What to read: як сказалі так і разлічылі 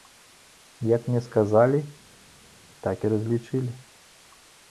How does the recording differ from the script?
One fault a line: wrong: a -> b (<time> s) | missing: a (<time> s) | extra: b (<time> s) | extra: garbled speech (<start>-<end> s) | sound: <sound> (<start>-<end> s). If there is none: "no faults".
extra: мне (1.1 s)